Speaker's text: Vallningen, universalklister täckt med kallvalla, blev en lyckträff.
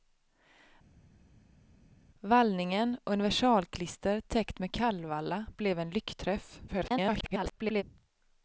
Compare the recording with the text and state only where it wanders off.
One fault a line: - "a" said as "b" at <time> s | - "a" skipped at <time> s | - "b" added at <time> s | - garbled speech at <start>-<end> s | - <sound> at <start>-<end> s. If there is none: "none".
- garbled speech at 6.7-7.8 s